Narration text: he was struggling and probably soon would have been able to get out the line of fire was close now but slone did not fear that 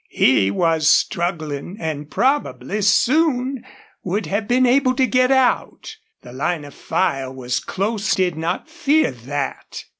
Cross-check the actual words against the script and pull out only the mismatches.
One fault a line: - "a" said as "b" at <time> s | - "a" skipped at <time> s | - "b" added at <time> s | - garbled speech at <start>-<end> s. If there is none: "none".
- "now but slone" skipped at 8.2 s